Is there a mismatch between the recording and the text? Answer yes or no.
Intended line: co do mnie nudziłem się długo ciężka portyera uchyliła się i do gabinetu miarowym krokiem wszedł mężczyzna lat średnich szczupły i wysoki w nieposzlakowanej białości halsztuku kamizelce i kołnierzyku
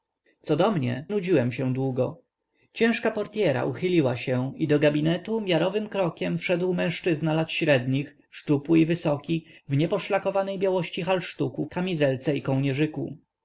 no